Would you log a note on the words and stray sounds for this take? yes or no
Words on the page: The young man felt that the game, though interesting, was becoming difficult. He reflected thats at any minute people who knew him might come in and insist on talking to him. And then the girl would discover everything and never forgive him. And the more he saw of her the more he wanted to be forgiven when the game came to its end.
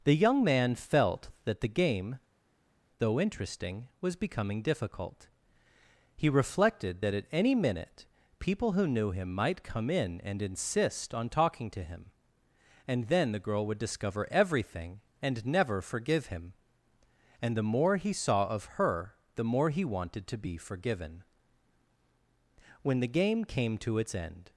yes